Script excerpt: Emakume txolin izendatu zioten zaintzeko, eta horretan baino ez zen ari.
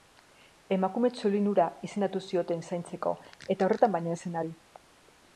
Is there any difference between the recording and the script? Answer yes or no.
yes